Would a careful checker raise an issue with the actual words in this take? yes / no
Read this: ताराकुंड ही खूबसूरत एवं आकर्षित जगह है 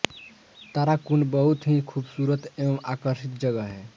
yes